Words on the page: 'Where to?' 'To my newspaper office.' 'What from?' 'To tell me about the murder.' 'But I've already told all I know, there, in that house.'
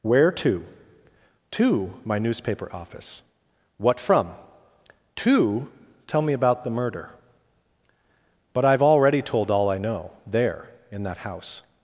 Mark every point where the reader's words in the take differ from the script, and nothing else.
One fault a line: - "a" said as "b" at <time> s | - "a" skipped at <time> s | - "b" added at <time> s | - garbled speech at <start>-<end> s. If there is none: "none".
none